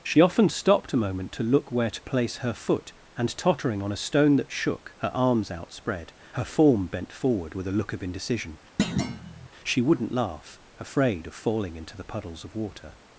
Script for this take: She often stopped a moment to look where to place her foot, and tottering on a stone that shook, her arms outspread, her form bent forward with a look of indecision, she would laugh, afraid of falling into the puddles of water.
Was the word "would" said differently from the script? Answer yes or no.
yes